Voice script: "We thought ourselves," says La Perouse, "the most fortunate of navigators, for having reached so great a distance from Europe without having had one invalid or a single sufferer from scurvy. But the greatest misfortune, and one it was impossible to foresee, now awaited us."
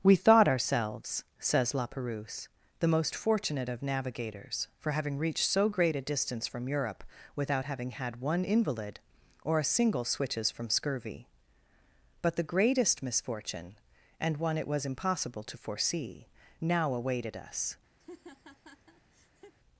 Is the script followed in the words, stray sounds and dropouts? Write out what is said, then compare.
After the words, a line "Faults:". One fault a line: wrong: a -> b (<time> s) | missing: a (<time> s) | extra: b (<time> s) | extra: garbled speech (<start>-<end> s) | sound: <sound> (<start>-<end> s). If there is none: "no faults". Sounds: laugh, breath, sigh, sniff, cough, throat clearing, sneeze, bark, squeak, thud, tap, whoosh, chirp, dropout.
"We thought ourselves," says La Perouse, "the most fortunate of navigators, for having reached so great a distance from Europe without having had one invalid or a single switches from scurvy. But the greatest misfortune, and one it was impossible to foresee, now awaited us."
Faults:
wrong: sufferer -> switches (10.0 s)
sound: laugh (18.0-19.5 s)